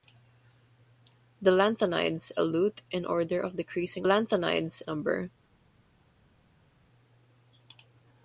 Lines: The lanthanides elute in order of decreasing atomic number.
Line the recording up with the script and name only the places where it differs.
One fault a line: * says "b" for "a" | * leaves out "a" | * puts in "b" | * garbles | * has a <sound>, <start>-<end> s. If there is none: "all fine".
* says "lanthanides" for "atomic"